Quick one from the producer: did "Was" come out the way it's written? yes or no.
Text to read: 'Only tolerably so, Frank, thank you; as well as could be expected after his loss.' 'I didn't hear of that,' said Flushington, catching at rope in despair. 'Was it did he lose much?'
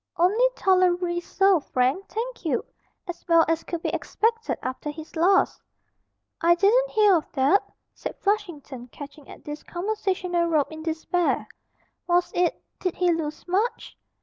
yes